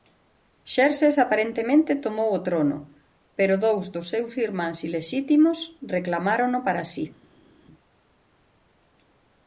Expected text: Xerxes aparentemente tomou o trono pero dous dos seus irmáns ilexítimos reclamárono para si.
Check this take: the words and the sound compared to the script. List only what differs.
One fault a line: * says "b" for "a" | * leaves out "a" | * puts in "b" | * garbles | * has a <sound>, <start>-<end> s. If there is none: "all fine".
all fine